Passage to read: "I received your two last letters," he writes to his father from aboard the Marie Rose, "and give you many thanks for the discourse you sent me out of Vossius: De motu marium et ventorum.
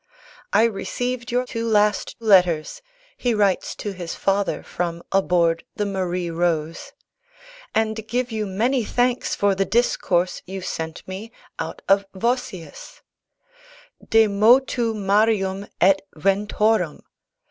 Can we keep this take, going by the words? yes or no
yes